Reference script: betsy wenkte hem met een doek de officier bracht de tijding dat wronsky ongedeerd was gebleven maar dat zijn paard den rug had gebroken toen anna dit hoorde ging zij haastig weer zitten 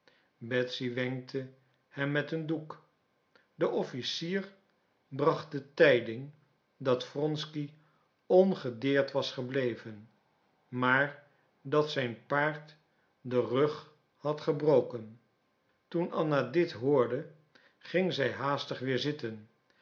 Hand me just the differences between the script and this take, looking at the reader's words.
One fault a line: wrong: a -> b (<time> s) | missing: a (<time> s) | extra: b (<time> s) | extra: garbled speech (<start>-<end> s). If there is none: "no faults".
no faults